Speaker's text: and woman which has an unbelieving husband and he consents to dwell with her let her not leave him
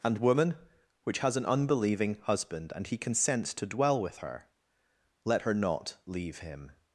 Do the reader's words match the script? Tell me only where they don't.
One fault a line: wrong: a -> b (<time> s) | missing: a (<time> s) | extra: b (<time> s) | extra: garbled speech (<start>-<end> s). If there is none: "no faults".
no faults